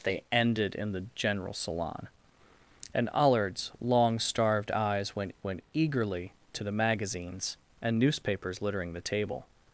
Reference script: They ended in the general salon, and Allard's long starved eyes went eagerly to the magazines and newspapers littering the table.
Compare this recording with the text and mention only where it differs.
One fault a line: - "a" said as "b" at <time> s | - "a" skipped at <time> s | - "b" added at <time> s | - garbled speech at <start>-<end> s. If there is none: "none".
- "went" added at 5.4 s